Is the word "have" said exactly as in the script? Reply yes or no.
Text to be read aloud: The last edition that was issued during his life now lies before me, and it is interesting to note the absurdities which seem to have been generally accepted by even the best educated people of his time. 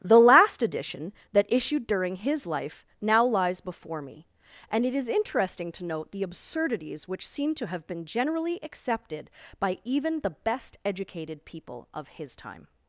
yes